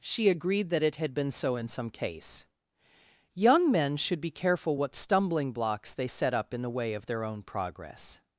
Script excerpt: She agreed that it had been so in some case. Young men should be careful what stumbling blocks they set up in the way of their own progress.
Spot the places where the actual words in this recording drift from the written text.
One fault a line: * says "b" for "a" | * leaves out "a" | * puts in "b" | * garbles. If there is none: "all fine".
all fine